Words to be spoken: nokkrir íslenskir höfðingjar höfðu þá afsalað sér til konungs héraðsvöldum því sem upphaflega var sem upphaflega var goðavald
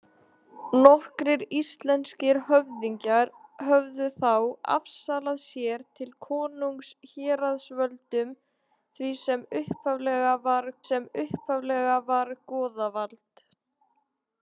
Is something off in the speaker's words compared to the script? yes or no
no